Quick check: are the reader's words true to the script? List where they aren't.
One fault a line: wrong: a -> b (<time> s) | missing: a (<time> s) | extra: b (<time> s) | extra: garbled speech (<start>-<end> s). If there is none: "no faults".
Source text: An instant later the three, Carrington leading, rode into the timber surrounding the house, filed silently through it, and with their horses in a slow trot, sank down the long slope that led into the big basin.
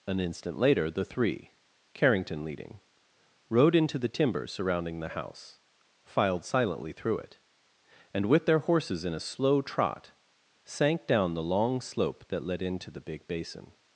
no faults